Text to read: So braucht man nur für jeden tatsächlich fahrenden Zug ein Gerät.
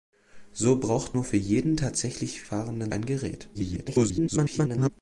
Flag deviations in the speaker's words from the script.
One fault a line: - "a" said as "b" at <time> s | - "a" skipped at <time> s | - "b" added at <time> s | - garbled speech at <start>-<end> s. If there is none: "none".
- "man" skipped at 1.1 s
- "Zug" skipped at 2.9 s
- garbled speech at 3.5-4.9 s